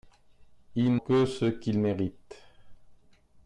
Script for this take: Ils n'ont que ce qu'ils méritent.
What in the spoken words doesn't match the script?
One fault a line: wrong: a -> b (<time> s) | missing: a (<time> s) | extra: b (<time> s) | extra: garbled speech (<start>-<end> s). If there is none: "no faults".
missing: n'ont (1.0 s)